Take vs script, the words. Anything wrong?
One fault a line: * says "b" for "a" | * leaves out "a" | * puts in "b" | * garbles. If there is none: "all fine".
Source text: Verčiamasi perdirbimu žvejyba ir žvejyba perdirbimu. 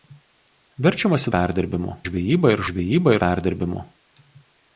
all fine